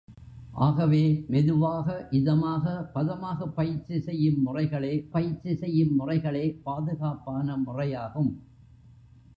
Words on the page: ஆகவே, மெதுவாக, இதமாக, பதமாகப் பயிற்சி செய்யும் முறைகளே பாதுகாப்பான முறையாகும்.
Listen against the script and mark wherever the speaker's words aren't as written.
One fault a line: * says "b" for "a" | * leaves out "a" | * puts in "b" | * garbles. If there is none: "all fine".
* puts in "பயிற்சி செய்யும் முறைகளே"